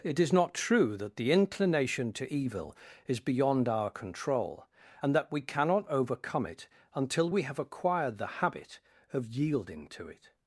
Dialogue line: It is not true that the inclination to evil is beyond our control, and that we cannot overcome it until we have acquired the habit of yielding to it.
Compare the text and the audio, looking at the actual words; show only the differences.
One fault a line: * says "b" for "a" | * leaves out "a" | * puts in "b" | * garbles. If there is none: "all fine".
all fine